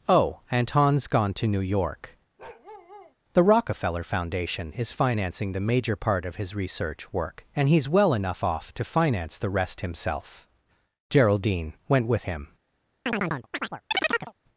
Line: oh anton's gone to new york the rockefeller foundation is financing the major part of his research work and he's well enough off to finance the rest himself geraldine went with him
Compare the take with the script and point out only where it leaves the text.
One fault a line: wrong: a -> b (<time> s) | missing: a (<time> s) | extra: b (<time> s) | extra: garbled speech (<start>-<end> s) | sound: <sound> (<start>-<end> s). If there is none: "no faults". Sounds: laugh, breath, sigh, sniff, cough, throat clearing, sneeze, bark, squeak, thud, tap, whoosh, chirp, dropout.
sound: bark (2.4-3.2 s)
sound: chirp (13.1-14.3 s)